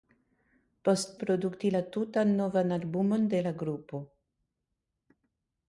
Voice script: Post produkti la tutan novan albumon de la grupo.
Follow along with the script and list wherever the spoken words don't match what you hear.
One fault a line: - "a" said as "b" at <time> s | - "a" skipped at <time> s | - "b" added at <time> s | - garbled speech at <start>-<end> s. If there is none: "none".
none